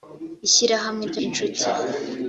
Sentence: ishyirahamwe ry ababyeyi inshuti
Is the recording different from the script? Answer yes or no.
yes